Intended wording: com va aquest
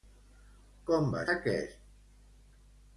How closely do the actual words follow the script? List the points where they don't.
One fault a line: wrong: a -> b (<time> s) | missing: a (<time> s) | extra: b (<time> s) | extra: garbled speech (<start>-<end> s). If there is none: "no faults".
no faults